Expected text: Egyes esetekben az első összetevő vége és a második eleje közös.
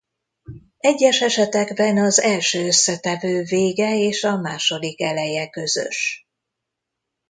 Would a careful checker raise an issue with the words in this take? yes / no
no